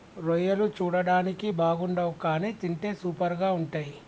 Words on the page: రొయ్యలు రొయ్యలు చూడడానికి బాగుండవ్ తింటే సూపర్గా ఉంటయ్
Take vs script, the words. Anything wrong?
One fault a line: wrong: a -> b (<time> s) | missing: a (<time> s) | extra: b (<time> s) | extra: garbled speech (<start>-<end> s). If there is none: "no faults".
missing: రొయ్యలు (0.7 s)
extra: కానీ (2.2 s)